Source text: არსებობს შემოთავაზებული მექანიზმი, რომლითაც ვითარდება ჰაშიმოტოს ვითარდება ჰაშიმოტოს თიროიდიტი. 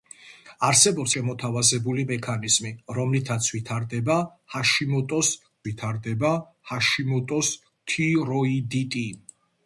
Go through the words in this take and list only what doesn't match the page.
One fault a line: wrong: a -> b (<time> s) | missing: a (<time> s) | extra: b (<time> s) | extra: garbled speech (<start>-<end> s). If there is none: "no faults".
no faults